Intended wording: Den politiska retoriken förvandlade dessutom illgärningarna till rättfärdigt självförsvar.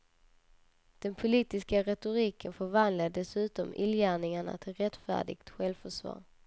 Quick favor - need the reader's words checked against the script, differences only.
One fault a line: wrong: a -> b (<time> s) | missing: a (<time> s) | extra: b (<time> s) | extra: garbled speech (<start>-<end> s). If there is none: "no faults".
no faults